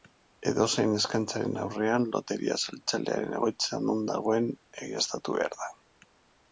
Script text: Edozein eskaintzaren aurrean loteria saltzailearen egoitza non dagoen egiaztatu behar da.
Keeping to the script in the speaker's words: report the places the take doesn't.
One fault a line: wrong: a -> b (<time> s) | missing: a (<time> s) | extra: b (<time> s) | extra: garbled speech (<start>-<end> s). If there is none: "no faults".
no faults